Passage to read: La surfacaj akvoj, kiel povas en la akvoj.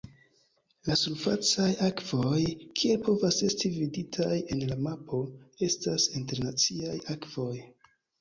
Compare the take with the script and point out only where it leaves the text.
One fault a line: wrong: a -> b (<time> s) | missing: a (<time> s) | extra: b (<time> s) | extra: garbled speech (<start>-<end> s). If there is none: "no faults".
extra: esti viditaj (3.5 s)
extra: mapo estas internaciaj (4.9 s)